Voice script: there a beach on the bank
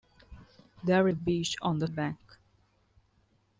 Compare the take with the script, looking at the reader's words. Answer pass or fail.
pass